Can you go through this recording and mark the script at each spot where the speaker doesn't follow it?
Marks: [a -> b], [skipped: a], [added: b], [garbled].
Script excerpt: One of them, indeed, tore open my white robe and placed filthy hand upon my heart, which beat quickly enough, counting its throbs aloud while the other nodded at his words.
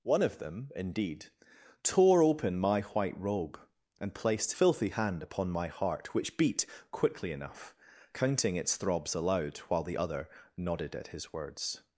One of them, indeed, tore open my white robe and placed filthy hand upon my heart, which beat quickly enough, counting its throbs aloud while the other nodded at his words.